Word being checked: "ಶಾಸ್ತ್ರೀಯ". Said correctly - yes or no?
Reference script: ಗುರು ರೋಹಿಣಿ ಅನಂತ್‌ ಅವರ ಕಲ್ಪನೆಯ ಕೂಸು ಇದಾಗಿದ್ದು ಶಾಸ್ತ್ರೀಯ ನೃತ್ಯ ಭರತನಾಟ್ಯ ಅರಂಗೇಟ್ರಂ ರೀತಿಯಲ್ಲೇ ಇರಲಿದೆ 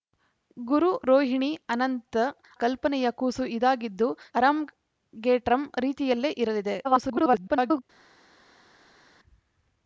no